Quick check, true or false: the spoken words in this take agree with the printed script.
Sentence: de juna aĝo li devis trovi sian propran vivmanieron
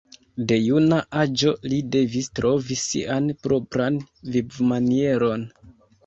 true